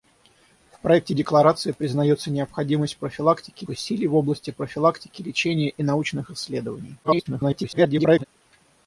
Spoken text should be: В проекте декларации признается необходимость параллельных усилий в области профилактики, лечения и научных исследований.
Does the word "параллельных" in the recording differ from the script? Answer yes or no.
yes